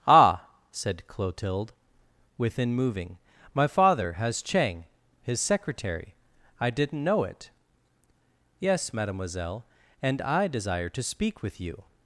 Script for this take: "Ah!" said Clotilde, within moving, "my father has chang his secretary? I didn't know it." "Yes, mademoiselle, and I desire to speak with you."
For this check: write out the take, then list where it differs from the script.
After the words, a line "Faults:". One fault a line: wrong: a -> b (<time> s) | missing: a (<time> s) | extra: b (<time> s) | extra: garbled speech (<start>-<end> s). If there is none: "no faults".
"Ah!" said Clotilde, within moving, "my father has chang his secretary? I didn't know it." "Yes, mademoiselle, and I desire to speak with you."
Faults:
no faults